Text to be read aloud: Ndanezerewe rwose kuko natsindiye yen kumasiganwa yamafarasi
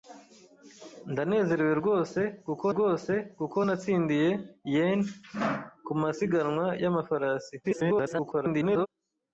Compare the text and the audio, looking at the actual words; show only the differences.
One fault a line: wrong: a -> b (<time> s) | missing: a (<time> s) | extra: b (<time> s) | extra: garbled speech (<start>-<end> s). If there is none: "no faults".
extra: rwose kuko (2.7 s)
extra: garbled speech (7.6-8.9 s)